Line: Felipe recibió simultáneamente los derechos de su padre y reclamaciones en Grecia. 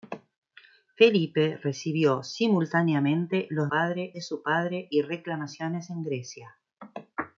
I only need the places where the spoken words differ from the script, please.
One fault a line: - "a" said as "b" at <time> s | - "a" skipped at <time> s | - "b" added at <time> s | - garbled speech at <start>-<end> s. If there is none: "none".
- "derechos" said as "padre" at 3.7 s